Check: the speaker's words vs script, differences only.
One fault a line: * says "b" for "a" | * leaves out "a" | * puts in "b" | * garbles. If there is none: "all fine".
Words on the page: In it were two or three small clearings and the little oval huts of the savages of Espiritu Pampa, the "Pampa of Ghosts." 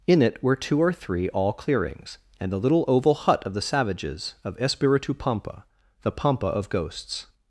* says "all" for "small"
* says "hut" for "huts"